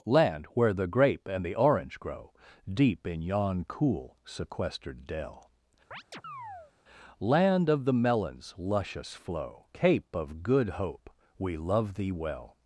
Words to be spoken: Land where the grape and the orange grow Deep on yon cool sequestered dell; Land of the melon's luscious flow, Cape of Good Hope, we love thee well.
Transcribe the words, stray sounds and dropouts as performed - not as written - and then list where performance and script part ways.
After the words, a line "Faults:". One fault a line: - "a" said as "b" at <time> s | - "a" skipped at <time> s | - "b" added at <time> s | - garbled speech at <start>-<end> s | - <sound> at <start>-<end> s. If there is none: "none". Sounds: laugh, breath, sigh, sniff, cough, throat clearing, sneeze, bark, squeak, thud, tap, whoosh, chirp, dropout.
Land where the grape and the orange grow Deep in yon cool sequestered dell; Land of the melon's luscious flow, Cape of Good Hope, we love thee well.
Faults:
- "on" said as "in" at 3.1 s
- chirp at 5.9-6.7 s